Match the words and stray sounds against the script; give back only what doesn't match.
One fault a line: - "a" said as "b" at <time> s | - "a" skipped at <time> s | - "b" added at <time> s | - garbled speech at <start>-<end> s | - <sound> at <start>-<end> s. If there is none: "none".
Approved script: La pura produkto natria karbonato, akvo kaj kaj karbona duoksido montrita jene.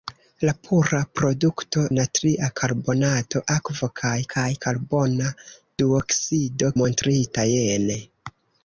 none